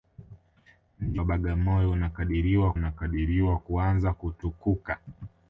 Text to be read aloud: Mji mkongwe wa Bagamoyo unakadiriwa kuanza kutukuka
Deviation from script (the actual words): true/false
true